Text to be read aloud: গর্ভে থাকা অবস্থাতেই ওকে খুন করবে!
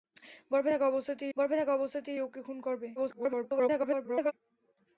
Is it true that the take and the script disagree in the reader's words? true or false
true